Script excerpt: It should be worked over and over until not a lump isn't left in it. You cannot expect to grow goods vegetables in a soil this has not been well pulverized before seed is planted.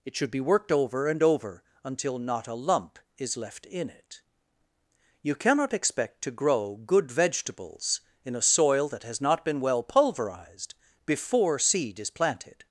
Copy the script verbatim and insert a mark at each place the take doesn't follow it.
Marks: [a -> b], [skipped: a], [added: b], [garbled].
It should be worked over and over until not a lump [isn't -> is] left in it. You cannot expect to grow [goods -> good] vegetables in a soil [this -> that] has not been well pulverized before seed is planted.